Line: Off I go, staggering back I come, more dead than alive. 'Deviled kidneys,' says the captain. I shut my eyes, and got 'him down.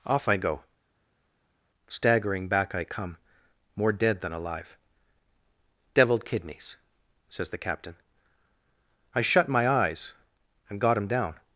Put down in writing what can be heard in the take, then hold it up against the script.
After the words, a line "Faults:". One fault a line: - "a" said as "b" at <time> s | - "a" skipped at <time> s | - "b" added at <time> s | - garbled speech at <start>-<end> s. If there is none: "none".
Off I go, staggering back I come, more dead than alive. 'Deviled kidneys,' says the captain. I shut my eyes, and got 'him down.
Faults:
none